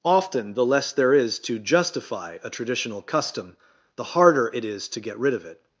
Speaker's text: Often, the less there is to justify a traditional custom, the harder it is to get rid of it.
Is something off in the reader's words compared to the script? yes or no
no